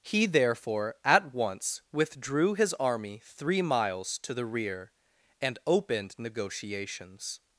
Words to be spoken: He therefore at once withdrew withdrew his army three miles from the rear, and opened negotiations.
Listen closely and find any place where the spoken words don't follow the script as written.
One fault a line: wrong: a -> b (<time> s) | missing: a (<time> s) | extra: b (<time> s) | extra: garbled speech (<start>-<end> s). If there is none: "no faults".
missing: withdrew (2.5 s)
wrong: from -> to (4.2 s)